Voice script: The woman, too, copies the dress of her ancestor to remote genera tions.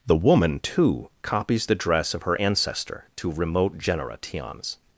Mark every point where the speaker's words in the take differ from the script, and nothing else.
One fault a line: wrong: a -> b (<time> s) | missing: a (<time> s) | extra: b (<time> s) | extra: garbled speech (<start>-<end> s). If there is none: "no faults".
no faults